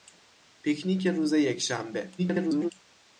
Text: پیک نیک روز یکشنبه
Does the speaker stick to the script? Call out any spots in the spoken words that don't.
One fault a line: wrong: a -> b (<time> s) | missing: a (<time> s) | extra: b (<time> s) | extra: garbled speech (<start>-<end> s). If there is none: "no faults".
extra: garbled speech (2.2-2.7 s)